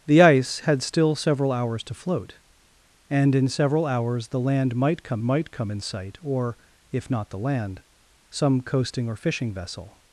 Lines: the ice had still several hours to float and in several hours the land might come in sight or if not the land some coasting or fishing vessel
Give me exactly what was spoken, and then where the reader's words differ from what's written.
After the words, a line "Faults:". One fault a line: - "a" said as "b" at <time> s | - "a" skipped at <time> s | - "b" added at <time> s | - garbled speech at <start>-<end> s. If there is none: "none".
the ice had still several hours to float and in several hours the land might come might come in sight or if not the land some coasting or fishing vessel
Faults:
- "might come" added at 5.2 s